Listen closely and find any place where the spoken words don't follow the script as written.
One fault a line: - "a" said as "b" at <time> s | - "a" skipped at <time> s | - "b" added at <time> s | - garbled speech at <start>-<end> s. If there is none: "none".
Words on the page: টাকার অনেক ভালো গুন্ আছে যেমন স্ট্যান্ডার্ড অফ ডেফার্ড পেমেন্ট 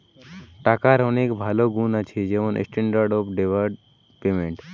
none